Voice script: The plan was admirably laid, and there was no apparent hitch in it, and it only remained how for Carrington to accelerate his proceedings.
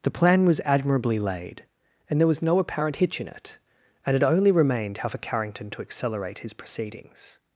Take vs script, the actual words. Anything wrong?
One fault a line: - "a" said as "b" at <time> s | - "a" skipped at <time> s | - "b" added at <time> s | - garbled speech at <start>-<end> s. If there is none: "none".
none